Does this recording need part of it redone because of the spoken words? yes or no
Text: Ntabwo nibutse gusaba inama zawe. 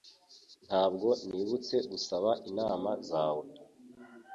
no